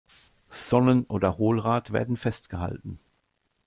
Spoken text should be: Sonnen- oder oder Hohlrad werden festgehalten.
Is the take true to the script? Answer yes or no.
no